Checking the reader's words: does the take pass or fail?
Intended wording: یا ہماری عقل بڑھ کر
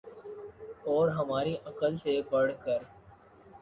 fail